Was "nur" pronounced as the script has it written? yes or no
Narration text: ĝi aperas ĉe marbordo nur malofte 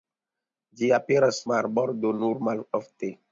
yes